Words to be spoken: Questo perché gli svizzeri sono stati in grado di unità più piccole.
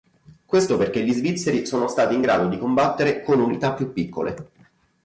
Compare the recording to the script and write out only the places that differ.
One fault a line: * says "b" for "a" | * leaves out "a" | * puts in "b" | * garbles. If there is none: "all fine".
* puts in "combattere con"